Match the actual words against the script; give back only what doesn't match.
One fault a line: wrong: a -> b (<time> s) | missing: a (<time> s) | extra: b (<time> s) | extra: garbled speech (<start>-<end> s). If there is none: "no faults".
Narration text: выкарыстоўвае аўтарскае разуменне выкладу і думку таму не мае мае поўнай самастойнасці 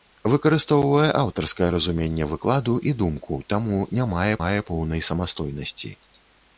no faults